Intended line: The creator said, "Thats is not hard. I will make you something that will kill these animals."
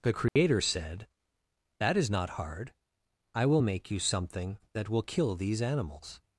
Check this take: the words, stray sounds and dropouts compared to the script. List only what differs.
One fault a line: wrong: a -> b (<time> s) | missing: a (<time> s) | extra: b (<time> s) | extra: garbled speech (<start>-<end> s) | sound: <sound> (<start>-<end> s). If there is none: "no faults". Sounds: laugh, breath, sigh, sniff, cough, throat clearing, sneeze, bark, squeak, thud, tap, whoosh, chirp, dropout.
sound: dropout (0.3-0.4 s)
wrong: Thats -> That (1.8 s)